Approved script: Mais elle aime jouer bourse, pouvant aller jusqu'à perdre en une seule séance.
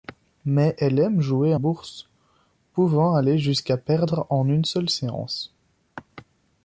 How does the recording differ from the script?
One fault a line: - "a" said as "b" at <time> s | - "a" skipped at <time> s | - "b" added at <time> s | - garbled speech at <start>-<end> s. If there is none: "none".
none